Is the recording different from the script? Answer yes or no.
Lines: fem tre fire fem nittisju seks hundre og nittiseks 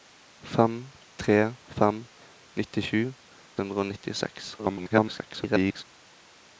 yes